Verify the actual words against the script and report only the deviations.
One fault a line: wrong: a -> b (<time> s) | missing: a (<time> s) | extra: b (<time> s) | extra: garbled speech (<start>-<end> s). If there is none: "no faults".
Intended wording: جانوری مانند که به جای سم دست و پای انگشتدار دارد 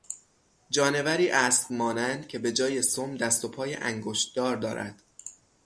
extra: اسب (1.3 s)